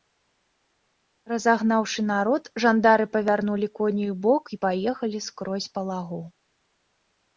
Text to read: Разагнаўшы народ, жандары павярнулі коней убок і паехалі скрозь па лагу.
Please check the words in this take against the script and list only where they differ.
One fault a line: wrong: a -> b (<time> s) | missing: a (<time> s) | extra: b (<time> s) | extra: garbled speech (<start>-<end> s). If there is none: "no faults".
no faults